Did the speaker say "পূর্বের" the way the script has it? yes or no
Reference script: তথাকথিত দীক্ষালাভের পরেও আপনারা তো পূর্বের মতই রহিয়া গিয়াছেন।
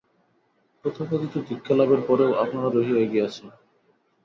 no